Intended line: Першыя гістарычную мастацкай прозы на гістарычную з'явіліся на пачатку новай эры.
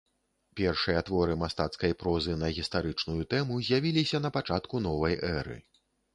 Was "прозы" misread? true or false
false